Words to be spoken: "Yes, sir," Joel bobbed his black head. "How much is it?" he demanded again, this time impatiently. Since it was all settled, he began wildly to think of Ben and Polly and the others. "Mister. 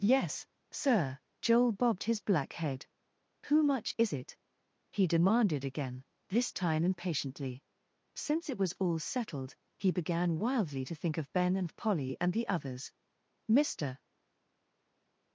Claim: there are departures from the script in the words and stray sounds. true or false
true